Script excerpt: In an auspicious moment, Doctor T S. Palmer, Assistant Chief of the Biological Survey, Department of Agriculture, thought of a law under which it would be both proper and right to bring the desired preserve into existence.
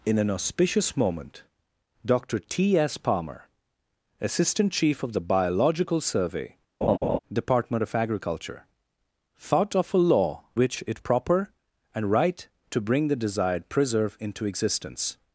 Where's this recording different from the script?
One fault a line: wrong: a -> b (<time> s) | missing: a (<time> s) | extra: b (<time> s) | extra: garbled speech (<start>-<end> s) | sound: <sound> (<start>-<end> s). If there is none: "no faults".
sound: laugh (6.8-7.2 s)
missing: under (10.4 s)
missing: would be both (11.0 s)